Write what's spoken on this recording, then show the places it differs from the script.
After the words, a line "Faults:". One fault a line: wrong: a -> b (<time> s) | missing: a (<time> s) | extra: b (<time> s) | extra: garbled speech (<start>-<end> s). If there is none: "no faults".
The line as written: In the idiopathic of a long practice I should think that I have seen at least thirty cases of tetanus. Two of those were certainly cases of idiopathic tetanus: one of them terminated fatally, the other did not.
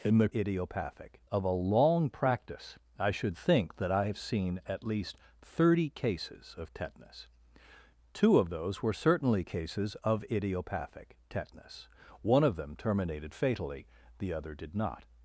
In the idiopathic of a long practice I should think that I have seen at least thirty cases of tetanus. Two of those were certainly cases of idiopathic tetanus: one of them terminated fatally, the other did not.
Faults:
no faults